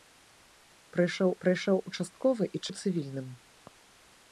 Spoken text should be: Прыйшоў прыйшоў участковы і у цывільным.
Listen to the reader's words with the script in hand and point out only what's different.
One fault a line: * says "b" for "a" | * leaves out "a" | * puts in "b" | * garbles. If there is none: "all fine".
all fine